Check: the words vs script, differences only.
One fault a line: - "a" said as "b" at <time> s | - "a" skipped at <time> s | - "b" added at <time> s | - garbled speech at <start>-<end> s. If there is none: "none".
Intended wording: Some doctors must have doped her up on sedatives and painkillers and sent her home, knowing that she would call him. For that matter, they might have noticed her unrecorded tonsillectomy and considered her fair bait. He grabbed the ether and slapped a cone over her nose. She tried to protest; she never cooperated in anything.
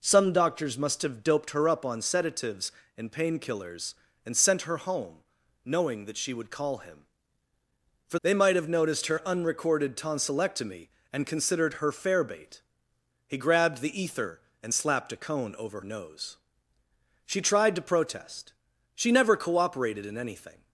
- "that matter" skipped at 8.2 s
- "her" skipped at 15.8 s